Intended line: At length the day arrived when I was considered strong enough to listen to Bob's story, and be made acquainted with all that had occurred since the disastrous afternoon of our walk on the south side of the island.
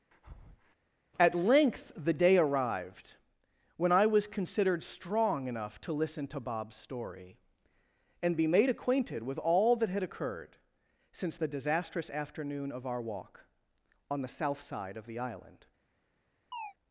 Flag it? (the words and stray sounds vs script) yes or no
yes